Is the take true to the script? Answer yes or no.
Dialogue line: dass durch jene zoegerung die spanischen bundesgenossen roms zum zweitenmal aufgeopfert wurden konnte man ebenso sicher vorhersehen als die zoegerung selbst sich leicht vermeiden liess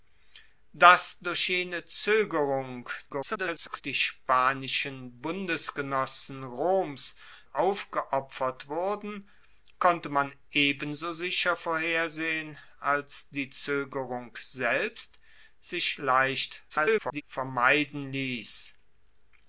no